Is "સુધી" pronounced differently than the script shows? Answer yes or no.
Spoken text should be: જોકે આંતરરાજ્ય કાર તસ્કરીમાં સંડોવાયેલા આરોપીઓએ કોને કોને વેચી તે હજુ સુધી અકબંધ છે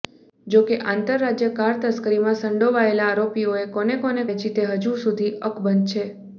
no